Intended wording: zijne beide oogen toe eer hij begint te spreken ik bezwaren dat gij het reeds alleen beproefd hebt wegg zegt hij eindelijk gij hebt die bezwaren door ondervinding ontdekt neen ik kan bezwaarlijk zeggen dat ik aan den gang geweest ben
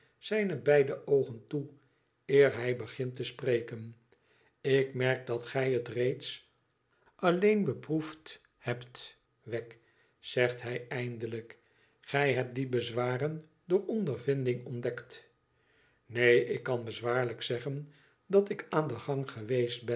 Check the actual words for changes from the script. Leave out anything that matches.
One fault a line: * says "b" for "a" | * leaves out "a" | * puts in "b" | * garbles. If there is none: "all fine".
* says "merk" for "bezwaren"